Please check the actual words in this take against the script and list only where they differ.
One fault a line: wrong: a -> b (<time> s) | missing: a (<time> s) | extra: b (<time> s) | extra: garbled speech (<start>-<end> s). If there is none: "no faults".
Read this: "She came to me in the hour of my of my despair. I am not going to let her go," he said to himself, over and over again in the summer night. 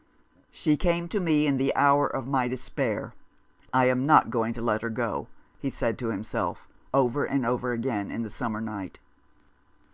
missing: of my (2.5 s)